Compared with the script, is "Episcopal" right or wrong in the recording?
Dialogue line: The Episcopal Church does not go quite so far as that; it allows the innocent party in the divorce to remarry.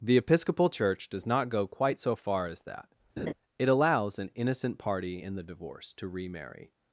right